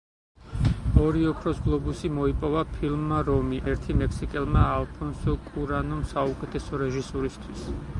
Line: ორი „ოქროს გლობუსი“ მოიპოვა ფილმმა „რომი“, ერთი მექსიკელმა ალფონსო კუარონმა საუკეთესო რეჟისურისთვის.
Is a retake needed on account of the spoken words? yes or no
no